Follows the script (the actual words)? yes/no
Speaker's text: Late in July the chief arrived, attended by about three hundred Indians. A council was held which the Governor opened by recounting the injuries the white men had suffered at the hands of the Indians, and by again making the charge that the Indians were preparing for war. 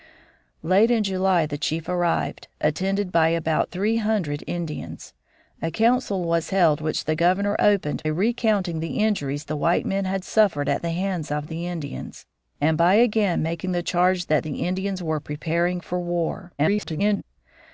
no